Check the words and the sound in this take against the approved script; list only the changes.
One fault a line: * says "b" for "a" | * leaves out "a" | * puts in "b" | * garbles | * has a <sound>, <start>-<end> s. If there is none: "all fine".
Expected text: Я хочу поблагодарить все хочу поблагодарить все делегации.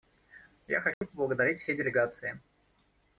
* has a dropout, 0.9-1.0 s
* leaves out "хочу поблагодарить все"